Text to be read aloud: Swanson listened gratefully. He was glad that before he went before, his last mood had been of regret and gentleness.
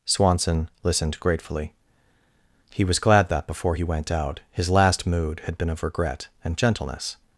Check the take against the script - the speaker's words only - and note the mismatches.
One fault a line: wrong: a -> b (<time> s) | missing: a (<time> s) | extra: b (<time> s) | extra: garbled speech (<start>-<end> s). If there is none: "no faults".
wrong: before -> out (4.1 s)